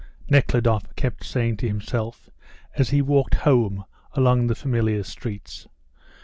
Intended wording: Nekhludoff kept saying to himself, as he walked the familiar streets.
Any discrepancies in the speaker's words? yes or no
yes